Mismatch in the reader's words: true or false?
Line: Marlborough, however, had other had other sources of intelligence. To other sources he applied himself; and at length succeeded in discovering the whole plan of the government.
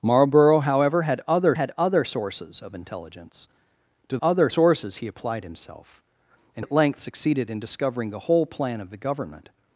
false